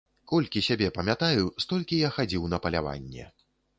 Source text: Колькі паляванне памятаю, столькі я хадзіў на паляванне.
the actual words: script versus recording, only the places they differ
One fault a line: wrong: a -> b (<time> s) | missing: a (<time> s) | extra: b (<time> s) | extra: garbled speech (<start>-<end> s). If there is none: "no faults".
wrong: паляванне -> сябе (0.7 s)